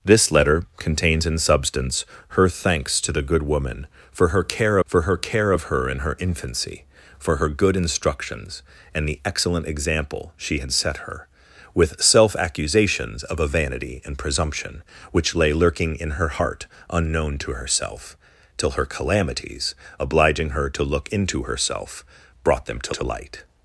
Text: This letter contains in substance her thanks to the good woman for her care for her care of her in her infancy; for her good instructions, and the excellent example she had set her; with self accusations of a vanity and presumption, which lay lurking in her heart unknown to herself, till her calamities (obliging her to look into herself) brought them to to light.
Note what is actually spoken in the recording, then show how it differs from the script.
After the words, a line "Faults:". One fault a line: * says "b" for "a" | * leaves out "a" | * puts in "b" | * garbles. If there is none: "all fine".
This letter contains in substance her thanks to the good woman for her care for her care of her in her infancy; for her good instructions, and the excellent example she had set her; with self accusations of a vanity and presumption, which lay lurking in her heart unknown to herself, till her calamities (obliging her to look into herself) brought them to to light.
Faults:
all fine